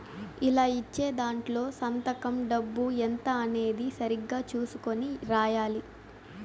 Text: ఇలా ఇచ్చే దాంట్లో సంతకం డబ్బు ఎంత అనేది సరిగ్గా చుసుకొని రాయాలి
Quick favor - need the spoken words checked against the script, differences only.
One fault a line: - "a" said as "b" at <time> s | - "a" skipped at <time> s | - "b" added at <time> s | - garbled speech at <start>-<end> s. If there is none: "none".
none